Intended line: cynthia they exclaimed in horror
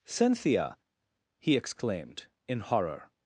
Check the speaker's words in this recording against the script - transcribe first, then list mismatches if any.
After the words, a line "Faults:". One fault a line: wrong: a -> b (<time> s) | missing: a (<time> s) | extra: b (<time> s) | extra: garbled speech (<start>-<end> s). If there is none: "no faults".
cynthia he exclaimed in horror
Faults:
wrong: they -> he (1.4 s)